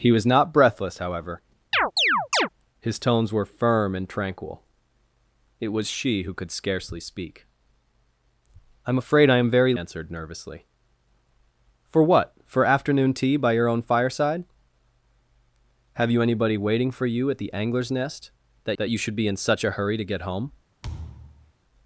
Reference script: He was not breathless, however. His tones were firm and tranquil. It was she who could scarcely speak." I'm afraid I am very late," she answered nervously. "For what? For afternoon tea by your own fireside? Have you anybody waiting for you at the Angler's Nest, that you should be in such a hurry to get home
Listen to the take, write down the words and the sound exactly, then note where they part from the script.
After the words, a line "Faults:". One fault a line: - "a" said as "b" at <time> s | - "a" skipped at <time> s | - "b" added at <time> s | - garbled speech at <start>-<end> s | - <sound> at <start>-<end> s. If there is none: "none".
He was not breathless, however. His tones were firm and tranquil. It was she who could scarcely speak." I'm afraid I am very answered nervously. "For what? For afternoon tea by your own fireside? Have you anybody waiting for you at the Angler's Nest, that that you should be in such a hurry to get home
Faults:
- chirp at 1.7-2.5 s
- "late she" skipped at 9.7 s
- "that" added at 18.8 s
- thud at 20.8-21.5 s